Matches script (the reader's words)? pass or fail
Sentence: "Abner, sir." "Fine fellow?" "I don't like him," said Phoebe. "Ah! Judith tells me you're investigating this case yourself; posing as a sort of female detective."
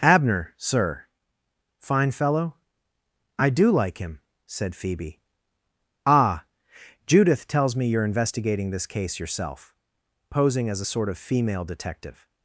fail